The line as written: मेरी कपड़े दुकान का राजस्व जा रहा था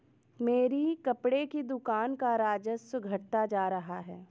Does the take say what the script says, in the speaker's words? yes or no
no